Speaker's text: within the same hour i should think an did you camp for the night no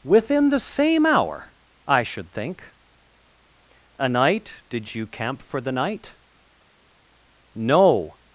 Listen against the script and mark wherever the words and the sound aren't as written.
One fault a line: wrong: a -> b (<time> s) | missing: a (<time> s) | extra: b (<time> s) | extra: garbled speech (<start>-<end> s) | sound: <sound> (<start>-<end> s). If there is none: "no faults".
wrong: an -> a night (4.0 s)